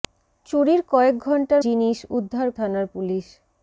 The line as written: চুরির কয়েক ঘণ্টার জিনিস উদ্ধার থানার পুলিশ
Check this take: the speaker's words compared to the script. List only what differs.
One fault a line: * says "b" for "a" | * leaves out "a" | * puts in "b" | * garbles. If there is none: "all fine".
all fine